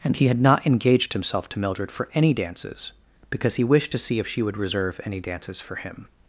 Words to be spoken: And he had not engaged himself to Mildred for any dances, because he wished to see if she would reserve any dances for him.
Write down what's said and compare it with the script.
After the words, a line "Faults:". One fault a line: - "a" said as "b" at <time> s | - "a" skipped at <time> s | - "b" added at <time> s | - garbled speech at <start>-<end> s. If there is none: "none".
And he had not engaged himself to Mildred for any dances, because he wished to see if she would reserve any dances for him.
Faults:
none